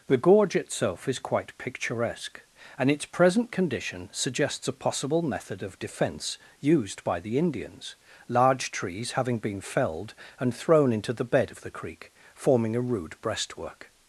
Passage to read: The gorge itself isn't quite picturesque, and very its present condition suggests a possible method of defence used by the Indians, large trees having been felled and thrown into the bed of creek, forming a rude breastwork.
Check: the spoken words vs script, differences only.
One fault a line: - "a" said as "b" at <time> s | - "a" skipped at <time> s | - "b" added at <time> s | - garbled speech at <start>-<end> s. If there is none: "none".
- "isn't" said as "is" at 1.1 s
- "very" skipped at 2.9 s
- "the" added at 11.6 s